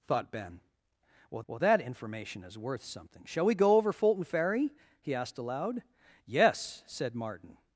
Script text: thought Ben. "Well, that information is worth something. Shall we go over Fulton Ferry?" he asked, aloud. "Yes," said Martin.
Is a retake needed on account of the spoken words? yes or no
yes